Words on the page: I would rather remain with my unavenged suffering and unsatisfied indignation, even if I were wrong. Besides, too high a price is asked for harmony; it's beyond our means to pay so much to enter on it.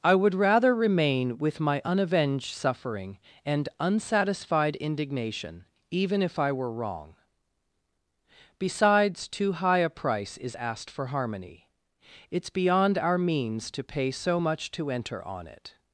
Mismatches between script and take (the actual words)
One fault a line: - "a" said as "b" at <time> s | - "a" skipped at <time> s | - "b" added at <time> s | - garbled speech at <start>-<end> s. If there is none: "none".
none